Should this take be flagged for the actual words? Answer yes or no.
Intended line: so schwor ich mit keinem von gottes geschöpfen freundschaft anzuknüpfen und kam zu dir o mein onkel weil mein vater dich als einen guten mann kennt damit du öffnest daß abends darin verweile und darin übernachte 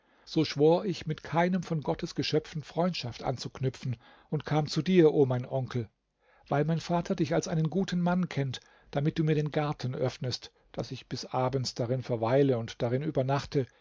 yes